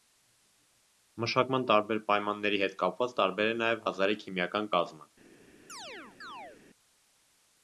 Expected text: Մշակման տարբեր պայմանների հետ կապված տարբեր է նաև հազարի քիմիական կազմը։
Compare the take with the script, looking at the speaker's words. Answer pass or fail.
pass